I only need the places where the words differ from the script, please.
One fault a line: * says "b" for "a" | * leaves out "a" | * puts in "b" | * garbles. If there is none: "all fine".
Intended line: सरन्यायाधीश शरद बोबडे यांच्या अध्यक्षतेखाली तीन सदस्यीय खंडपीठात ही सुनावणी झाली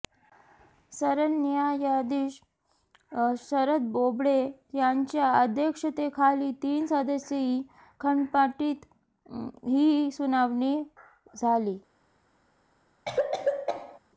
all fine